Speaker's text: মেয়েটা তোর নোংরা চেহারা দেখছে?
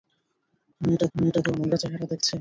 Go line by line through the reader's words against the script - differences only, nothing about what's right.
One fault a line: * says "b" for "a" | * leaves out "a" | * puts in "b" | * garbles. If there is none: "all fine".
* puts in "মেয়েটা"